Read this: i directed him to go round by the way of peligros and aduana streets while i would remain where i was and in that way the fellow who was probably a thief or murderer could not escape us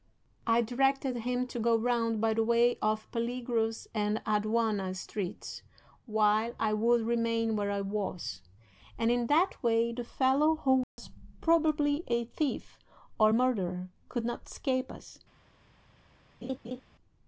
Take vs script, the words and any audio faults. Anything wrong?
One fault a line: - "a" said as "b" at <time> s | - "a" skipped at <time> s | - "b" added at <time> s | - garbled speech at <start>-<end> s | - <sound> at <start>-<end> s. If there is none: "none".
- dropout at 10.8-11.0 s
- laugh at 16.4-16.8 s